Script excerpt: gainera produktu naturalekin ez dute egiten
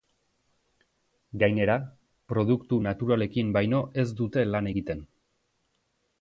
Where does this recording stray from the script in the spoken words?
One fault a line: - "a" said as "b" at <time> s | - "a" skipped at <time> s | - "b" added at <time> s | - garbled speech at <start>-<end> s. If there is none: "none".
- "baino" added at 3.6 s
- "lan" added at 4.5 s